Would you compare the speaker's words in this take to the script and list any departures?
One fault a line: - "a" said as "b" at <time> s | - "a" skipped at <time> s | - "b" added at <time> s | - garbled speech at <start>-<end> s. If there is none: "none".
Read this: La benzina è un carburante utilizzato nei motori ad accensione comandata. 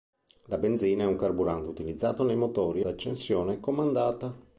- "ad" skipped at 2.9 s